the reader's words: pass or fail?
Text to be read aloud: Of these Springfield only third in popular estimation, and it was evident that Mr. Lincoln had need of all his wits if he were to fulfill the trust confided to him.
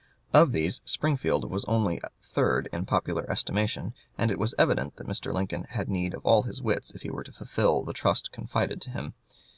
fail